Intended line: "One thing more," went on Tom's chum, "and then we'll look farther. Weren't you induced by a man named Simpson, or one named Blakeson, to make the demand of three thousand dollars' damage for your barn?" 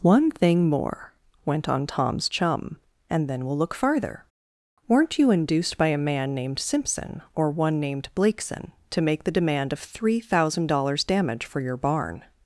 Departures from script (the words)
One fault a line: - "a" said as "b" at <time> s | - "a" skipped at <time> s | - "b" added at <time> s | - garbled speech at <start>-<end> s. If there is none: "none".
none